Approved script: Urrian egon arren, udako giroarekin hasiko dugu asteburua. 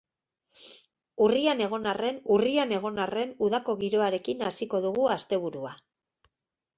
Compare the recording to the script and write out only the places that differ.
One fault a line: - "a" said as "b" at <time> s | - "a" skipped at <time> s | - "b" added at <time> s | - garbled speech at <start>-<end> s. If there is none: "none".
- "urrian egon arren" added at 2.3 s